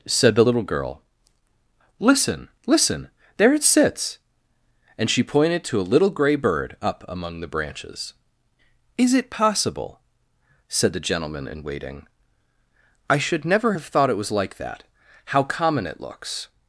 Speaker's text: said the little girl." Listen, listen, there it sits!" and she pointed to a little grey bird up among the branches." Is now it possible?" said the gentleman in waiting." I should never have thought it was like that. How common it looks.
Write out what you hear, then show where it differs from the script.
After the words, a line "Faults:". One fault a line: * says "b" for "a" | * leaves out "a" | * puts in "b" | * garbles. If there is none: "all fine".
said the little girl." Listen, listen, there it sits!" and she pointed to a little grey bird up among the branches." Is it possible?" said the gentleman in waiting." I should never have thought it was like that. How common it looks.
Faults:
* leaves out "now"